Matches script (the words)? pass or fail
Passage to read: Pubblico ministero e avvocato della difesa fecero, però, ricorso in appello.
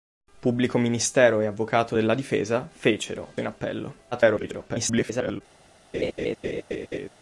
fail